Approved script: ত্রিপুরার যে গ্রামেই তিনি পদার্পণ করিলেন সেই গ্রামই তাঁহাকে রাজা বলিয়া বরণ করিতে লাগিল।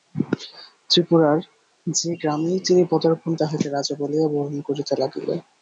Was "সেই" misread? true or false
true